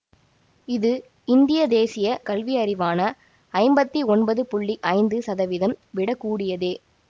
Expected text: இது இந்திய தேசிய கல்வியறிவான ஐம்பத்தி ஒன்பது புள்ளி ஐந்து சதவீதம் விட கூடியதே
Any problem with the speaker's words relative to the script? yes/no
no